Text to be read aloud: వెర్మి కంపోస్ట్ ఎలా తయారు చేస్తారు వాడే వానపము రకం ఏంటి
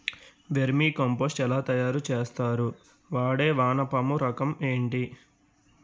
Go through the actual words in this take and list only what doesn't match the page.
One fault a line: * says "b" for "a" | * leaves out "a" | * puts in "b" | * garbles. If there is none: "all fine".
all fine